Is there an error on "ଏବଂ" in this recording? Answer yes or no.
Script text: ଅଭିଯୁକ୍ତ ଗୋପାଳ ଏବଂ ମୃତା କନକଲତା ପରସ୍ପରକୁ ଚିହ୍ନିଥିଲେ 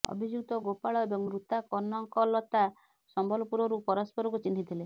no